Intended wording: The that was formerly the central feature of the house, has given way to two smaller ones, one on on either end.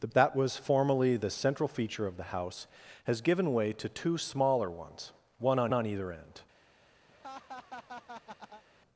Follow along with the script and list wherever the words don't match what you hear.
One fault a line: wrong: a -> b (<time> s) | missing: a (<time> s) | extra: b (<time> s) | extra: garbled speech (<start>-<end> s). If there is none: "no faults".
no faults